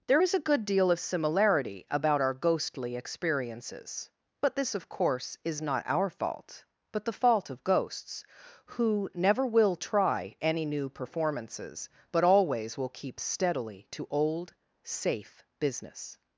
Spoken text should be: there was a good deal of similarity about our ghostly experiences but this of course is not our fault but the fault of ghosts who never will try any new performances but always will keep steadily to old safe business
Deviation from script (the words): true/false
true